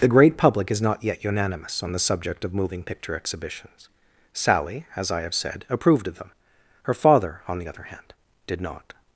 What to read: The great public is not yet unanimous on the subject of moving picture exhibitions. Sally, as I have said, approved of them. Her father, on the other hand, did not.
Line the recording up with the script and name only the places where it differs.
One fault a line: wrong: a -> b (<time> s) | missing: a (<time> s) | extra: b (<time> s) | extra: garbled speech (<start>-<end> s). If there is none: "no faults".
no faults